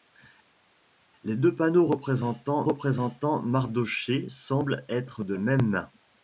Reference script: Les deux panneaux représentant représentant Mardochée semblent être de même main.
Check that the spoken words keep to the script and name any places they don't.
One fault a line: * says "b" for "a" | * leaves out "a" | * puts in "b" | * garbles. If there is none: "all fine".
all fine